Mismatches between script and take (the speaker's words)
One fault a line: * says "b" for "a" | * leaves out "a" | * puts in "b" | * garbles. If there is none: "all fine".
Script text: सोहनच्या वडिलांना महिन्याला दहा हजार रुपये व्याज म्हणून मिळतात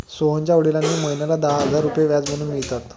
all fine